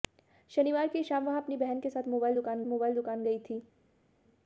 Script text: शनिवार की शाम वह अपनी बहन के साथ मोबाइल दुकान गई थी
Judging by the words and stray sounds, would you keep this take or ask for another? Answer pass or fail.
fail